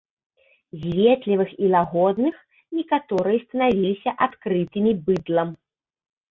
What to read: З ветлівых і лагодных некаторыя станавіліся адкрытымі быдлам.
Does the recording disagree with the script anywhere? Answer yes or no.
no